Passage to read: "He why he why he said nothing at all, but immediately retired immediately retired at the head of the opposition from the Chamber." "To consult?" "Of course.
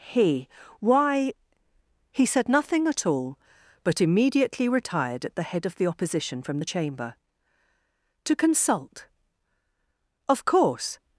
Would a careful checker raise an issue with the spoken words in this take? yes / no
yes